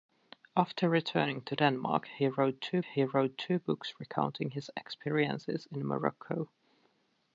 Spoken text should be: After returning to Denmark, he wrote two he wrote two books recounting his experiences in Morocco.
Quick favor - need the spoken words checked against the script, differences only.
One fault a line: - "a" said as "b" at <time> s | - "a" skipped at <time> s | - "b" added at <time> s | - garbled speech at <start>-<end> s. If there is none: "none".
none